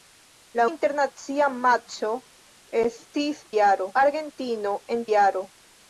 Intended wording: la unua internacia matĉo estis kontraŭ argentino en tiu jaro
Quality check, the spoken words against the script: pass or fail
fail